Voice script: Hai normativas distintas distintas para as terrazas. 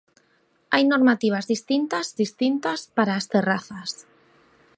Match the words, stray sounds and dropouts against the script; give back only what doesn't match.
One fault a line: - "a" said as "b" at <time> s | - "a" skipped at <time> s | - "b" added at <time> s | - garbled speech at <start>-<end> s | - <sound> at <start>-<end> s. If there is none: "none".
none